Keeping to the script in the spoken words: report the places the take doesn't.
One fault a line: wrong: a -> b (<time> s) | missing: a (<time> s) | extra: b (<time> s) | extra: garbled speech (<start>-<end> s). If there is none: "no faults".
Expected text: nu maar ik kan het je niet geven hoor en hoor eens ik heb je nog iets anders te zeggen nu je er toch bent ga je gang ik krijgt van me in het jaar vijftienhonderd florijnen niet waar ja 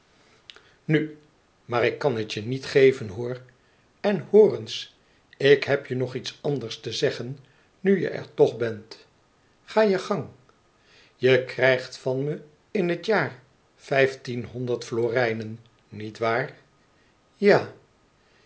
wrong: ik -> je (11.1 s)